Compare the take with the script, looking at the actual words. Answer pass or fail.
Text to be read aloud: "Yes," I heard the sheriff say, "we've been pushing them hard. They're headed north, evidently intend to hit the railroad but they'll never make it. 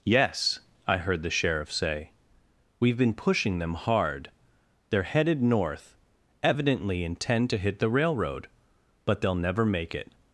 pass